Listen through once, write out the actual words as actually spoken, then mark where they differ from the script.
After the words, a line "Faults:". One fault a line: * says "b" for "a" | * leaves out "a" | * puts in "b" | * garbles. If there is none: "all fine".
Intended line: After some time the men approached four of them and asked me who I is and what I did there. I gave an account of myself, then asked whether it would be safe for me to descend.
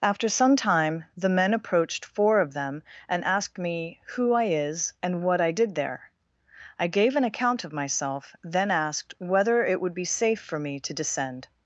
After some time the men approached four of them and asked me who I is and what I did there. I gave an account of myself, then asked whether it would be safe for me to descend.
Faults:
all fine